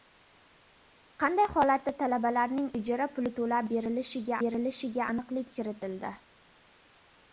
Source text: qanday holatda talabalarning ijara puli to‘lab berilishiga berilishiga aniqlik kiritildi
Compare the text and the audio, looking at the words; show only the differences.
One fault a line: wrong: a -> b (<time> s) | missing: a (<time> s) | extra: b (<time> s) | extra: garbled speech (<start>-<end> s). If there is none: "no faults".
no faults